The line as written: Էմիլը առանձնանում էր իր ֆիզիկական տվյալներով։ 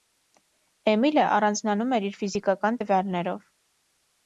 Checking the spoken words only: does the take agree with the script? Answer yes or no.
yes